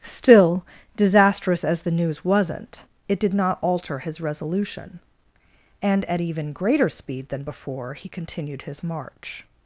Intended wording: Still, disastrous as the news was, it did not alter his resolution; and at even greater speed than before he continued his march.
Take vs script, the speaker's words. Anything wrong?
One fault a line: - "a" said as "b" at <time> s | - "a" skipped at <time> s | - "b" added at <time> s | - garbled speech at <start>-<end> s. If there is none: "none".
- "was" said as "wasn't" at 2.2 s